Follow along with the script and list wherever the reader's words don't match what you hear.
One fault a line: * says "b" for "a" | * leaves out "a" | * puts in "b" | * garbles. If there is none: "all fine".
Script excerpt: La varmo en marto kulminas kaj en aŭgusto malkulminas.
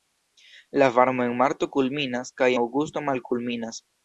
* leaves out "en"